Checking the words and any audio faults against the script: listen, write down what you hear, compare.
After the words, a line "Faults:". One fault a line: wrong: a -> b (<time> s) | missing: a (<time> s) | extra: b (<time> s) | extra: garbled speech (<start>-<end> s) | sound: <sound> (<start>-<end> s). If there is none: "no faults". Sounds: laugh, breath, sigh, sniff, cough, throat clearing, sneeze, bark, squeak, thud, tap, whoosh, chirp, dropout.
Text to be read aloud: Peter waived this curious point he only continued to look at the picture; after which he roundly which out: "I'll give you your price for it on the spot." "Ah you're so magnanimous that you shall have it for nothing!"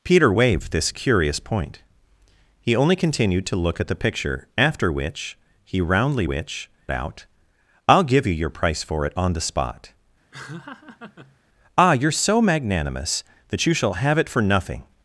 Peter waived this curious point he only continued to look at the picture; after which he roundly which out: "I'll give you your price for it on the spot." "Ah you're so magnanimous that you shall have it for nothing!"
Faults:
sound: laugh (10.3-11.4 s)